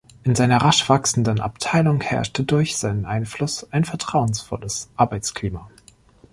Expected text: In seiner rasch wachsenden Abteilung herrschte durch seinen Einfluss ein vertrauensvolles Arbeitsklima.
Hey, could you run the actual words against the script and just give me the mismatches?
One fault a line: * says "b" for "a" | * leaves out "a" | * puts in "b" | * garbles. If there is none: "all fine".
all fine